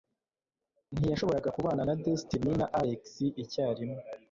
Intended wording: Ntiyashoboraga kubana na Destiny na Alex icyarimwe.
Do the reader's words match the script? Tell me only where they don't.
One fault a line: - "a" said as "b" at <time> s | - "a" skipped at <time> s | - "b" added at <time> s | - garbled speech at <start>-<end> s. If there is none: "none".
none